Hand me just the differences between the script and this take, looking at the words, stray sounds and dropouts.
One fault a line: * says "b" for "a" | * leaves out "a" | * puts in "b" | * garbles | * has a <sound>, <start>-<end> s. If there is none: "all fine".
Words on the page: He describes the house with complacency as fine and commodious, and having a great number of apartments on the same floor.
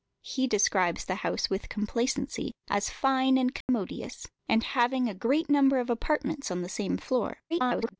* has a dropout, 3.6-3.7 s
* garbles